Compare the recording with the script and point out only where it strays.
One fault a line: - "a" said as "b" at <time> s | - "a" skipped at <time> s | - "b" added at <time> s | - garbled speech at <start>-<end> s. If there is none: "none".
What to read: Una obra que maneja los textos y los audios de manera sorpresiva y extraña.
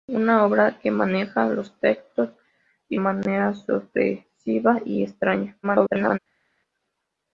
- "los audios de" skipped at 3.0 s
- garbled speech at 5.6-6.2 s